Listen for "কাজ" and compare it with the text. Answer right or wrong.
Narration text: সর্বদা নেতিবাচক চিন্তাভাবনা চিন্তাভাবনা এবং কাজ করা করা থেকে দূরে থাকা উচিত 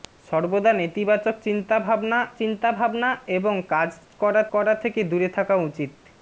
right